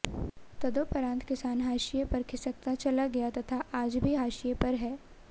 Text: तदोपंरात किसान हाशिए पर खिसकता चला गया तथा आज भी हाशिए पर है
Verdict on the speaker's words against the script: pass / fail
pass